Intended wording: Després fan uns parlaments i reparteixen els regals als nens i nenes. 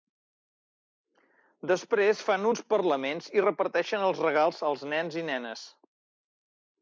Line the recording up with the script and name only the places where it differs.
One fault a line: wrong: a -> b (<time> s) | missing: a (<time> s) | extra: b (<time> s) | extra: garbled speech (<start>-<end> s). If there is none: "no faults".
no faults